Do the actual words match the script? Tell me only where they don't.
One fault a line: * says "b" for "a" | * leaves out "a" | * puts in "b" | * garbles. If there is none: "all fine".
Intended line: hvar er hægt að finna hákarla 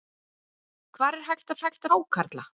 * says "hægt" for "finna"